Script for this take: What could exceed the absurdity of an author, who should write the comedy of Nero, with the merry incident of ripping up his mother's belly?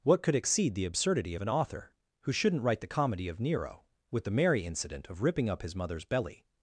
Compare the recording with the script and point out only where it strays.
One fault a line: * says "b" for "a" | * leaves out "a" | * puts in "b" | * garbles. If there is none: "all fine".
* says "shouldn't" for "should"